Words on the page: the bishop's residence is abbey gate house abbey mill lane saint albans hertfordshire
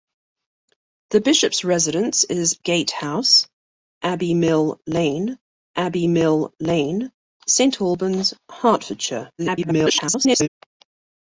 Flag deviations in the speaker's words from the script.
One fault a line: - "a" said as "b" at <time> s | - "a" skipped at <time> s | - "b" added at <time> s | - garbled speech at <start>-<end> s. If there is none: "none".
- "gate house" added at 2.6 s
- "gate house" said as "mill lane" at 4.3 s
- garbled speech at 9.4-10.5 s